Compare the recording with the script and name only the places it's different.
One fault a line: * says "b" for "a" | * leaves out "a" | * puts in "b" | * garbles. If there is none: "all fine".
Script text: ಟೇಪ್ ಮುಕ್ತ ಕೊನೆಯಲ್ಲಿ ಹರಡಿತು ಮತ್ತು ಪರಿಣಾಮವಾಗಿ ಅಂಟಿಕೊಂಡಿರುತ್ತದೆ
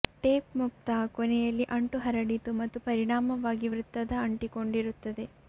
* puts in "ಅಂಟು"
* puts in "ವೃತ್ತದ"